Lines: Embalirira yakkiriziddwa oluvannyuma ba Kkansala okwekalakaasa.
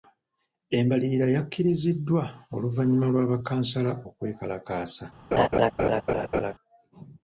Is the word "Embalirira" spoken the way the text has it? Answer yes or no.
yes